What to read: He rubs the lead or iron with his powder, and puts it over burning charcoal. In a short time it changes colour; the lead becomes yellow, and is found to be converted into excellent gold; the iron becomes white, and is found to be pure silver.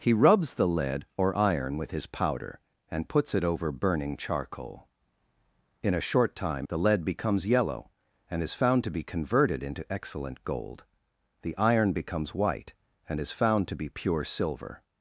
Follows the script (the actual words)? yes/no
no